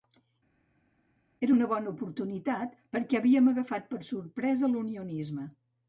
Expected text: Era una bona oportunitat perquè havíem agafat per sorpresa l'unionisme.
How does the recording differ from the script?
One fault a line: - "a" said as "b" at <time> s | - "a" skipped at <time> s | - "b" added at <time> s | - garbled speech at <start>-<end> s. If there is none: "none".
none